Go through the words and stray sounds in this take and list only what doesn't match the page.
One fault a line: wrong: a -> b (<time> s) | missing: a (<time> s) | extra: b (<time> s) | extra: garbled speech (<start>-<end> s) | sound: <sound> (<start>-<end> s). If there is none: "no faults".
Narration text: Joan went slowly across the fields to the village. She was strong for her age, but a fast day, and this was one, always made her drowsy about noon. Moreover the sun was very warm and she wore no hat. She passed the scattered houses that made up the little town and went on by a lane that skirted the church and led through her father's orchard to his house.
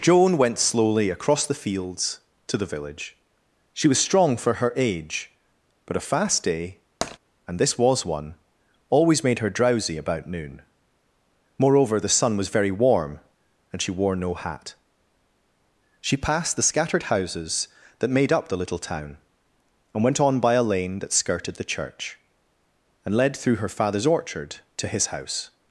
sound: tap (7.0-7.2 s)